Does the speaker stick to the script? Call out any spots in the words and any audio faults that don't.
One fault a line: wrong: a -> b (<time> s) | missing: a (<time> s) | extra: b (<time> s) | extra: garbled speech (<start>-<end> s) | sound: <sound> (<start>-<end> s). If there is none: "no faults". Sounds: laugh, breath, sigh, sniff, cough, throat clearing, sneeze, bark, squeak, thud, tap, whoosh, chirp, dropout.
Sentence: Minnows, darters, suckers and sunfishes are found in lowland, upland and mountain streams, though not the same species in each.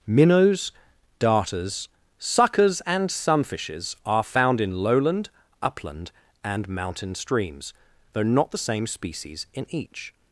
no faults